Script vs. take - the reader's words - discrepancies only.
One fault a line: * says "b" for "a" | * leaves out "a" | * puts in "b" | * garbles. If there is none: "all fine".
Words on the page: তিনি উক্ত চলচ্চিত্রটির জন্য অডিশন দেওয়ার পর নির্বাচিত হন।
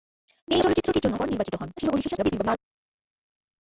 * leaves out "উক্ত"
* leaves out "অডিশন দেওয়ার"
* garbles